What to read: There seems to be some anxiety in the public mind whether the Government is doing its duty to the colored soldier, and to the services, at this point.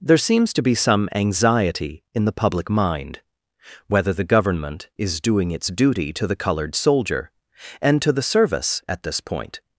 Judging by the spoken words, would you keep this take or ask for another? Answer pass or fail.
fail